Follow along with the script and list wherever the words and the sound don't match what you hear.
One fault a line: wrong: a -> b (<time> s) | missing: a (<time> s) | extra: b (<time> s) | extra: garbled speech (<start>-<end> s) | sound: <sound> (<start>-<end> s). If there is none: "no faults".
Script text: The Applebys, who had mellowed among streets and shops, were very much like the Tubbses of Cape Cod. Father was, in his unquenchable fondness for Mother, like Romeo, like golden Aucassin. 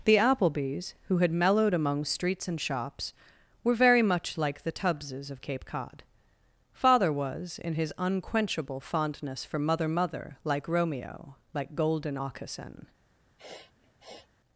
extra: Mother (9.9 s)
sound: sniff (13.4-14.3 s)